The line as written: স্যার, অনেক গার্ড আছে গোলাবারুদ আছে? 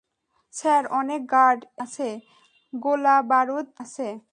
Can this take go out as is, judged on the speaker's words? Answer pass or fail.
pass